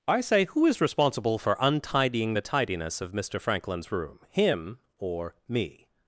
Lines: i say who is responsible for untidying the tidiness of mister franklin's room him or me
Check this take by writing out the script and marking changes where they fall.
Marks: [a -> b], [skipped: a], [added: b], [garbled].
i say who is responsible for untidying the tidiness of mister franklin's room him or me